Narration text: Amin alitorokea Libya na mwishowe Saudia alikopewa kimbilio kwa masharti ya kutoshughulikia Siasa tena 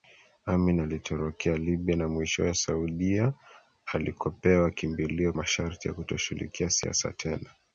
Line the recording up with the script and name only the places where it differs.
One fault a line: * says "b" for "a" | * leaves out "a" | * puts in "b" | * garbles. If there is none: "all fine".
* leaves out "kwa"